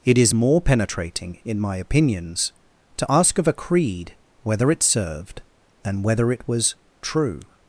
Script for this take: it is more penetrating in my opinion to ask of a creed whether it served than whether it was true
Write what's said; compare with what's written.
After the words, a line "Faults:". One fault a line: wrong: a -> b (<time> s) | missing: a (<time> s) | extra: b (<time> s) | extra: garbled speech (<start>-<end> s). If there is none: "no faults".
it is more penetrating in my opinions to ask of a creed whether it served than whether it was true
Faults:
wrong: opinion -> opinions (1.8 s)